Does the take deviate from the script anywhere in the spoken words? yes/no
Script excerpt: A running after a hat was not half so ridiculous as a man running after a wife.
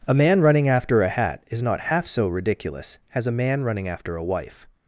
yes